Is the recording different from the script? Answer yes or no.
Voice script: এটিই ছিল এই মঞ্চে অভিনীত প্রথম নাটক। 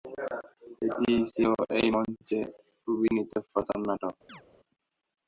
no